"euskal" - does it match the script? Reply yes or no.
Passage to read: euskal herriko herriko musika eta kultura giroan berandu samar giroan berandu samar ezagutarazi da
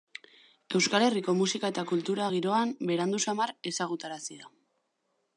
yes